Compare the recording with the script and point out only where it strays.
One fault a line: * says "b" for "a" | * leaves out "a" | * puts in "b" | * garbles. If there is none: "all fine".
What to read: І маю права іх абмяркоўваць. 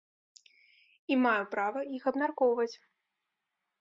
all fine